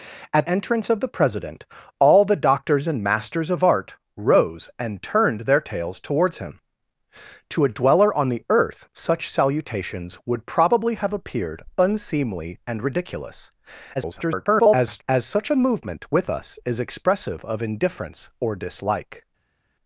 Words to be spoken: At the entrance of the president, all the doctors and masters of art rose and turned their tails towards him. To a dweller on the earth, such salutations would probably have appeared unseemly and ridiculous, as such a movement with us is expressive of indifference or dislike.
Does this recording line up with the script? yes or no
no